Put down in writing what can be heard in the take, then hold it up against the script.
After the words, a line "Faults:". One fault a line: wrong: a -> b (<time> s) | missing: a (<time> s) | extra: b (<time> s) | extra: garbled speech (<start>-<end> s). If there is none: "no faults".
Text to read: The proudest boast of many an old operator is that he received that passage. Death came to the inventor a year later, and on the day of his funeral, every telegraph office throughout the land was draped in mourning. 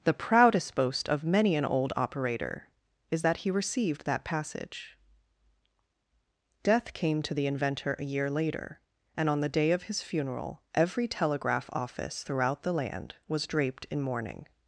The proudest boast of many an old operator is that he received that passage. Death came to the inventor a year later, and on the day of his funeral, every telegraph office throughout the land was draped in mourning.
Faults:
no faults